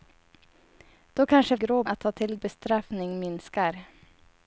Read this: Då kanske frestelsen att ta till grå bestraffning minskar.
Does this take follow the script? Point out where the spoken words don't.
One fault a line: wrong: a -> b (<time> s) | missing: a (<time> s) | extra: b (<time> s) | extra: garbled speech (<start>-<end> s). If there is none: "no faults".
wrong: frestelsen -> grå (1.5 s)
missing: grå (2.4 s)